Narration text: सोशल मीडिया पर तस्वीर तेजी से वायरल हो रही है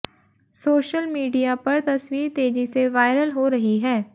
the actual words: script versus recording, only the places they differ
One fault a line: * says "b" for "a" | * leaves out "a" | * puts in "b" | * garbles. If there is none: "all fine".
all fine